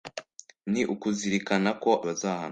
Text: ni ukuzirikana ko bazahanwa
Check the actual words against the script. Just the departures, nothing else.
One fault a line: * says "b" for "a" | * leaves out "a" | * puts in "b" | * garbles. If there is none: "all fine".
all fine